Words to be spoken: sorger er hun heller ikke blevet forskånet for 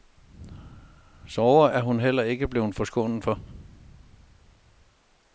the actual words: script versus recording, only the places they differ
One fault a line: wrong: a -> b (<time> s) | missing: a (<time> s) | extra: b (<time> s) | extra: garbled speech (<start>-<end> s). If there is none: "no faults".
no faults